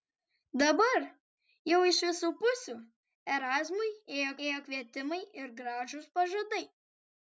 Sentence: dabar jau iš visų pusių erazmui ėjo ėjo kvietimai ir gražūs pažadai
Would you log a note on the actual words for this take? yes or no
no